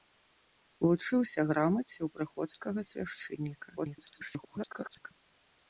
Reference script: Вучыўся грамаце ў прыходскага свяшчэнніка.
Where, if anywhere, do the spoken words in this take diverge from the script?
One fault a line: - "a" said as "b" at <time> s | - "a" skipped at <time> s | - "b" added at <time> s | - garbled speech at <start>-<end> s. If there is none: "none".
- garbled speech at 3.8-5.1 s